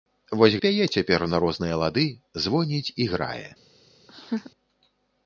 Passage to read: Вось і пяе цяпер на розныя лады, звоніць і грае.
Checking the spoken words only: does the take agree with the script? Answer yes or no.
yes